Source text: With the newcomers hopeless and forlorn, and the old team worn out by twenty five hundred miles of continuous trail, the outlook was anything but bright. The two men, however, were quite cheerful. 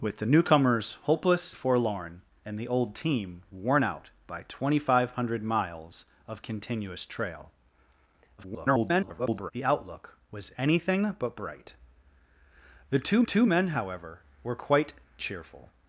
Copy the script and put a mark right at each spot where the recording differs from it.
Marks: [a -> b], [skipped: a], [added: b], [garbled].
With the newcomers hopeless [skipped: and] forlorn, and the old team worn out by twenty five hundred miles of continuous trail, [garbled] the outlook was anything but bright. The two [added: two] men, however, were quite cheerful.